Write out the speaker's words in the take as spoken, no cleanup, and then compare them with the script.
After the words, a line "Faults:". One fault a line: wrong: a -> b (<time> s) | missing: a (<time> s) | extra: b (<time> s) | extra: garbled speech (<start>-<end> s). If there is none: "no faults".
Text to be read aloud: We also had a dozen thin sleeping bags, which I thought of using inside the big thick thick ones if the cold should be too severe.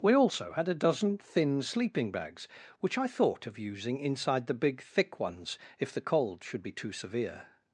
We also had a dozen thin sleeping bags, which I thought of using inside the big thick ones if the cold should be too severe.
Faults:
missing: thick (5.2 s)